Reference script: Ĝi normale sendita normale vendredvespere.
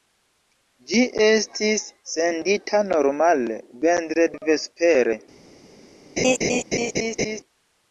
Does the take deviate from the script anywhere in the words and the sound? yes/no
yes